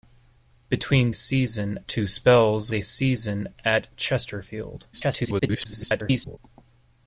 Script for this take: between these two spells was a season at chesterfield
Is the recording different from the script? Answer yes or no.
yes